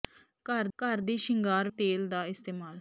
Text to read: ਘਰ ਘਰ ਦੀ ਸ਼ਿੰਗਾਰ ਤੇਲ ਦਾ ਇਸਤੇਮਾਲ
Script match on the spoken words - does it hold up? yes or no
yes